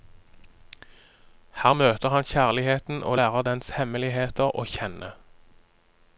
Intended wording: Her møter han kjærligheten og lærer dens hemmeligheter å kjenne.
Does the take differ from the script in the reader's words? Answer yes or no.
no